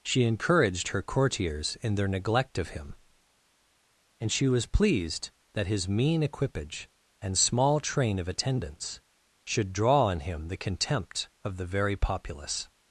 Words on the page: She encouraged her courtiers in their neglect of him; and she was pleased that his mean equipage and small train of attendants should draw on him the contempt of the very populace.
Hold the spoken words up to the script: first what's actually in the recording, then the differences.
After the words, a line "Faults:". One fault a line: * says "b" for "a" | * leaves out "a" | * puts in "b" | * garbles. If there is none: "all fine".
She encouraged her courtiers in their neglect of him; and she was pleased that his mean equipage and small train of attendants should draw on him the contempt of the very populace.
Faults:
all fine